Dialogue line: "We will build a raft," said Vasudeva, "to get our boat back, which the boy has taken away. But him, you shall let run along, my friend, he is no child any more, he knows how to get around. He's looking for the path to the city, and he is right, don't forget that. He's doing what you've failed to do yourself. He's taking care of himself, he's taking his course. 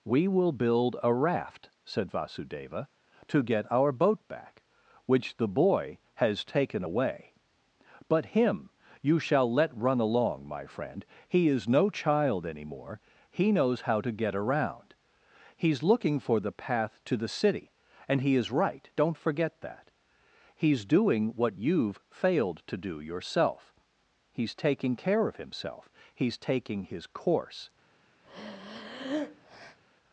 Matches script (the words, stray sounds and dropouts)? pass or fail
fail